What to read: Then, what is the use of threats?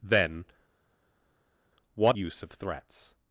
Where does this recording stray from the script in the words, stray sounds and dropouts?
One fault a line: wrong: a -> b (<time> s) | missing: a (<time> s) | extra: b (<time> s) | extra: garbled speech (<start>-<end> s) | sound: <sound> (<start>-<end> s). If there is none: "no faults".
missing: is the (2.2 s)